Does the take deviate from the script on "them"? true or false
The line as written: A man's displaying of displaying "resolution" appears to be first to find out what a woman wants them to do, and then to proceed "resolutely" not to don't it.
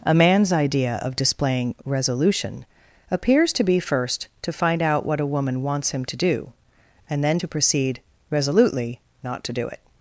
true